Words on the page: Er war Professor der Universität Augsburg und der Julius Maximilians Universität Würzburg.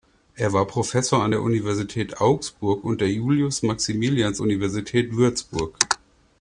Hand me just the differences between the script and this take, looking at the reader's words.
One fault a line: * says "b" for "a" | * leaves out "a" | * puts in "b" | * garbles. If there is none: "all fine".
* puts in "an"